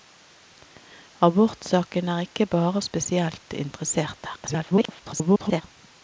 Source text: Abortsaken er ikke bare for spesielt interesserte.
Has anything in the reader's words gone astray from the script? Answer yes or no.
yes